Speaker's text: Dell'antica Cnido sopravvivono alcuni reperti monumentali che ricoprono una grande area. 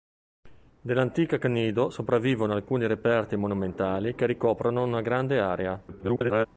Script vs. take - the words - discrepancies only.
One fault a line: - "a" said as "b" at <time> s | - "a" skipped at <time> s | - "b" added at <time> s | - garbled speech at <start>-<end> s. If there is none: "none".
- garbled speech at 5.9-6.5 s